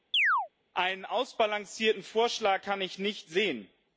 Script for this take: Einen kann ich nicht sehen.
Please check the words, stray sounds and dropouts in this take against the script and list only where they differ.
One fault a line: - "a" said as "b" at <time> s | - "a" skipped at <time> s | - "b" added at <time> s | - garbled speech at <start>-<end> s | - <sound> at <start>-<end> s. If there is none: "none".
- chirp at 0.1-0.5 s
- "ausbalancierten Vorschlag" added at 1.0 s